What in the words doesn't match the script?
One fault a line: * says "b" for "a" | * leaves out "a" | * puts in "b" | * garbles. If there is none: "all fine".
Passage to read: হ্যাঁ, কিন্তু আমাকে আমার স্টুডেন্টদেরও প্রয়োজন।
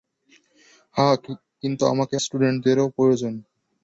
* leaves out "আমার"